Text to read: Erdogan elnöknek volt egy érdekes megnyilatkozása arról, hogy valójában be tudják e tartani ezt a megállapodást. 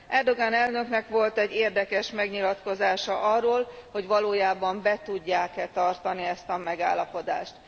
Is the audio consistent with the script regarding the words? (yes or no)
yes